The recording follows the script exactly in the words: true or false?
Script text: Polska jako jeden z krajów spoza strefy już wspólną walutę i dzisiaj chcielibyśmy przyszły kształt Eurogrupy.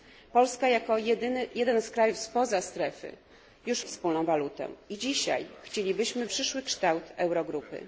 true